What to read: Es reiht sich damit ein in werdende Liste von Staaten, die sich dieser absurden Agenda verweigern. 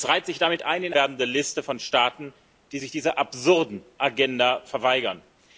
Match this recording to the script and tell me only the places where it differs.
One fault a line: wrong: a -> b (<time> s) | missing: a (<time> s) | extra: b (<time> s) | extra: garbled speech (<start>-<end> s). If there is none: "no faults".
no faults